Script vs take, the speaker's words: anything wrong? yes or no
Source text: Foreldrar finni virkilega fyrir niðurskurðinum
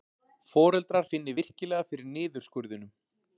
no